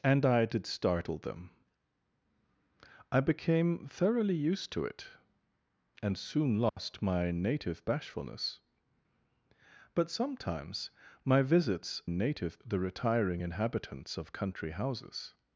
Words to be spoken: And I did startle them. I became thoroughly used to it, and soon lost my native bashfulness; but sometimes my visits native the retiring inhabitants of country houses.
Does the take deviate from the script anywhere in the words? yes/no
no